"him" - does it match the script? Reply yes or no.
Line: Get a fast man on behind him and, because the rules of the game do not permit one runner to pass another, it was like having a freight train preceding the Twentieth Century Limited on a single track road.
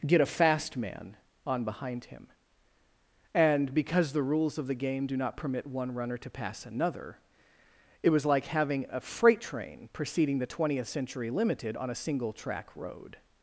yes